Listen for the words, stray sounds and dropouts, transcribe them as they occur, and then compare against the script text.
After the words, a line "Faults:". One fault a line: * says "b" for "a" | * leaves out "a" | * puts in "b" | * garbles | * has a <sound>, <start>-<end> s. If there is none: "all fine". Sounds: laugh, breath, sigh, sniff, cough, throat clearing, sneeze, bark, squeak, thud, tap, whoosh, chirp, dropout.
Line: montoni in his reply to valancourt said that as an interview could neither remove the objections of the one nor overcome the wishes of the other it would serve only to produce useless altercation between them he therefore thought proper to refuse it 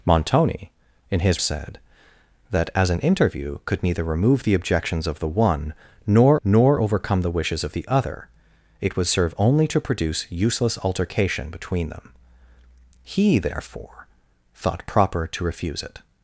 montoni in his said that as an interview could neither remove the objections of the one nor nor overcome the wishes of the other it would serve only to produce useless altercation between them he therefore thought proper to refuse it
Faults:
* leaves out "reply to valancourt"
* puts in "nor"